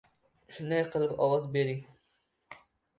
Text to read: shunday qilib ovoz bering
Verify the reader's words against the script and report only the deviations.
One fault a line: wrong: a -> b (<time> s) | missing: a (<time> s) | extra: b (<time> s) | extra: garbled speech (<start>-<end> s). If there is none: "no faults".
no faults